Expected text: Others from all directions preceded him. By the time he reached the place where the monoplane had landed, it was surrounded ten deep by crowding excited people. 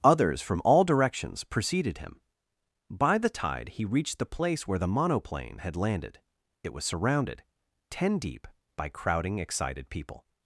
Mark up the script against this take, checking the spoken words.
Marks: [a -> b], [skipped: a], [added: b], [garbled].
Others from all directions preceded him. By the [time -> tide] he reached the place where the monoplane had landed, it was surrounded ten deep by crowding excited people.